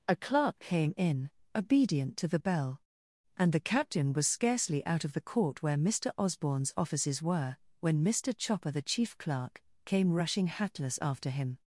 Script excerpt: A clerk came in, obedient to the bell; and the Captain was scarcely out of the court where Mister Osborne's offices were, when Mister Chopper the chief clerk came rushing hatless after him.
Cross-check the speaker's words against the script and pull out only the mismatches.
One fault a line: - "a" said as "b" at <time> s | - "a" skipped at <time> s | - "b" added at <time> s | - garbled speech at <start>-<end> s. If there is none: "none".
none